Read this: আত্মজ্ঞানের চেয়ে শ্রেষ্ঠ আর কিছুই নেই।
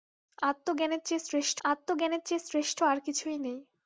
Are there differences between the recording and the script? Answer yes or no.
yes